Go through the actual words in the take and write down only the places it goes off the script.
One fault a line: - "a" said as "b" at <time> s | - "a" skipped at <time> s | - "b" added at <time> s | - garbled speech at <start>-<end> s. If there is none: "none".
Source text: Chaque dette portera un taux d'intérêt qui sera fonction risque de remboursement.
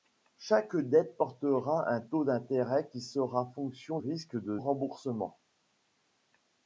none